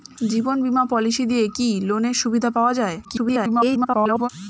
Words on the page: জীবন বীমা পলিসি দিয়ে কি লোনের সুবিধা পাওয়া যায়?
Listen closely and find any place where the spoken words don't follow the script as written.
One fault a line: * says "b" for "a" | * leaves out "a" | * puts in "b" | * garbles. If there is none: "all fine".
* garbles